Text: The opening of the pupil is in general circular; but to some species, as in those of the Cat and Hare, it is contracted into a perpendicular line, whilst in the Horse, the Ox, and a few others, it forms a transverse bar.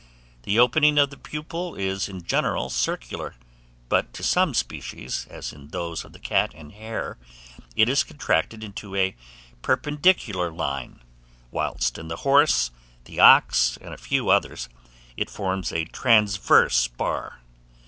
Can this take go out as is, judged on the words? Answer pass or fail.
pass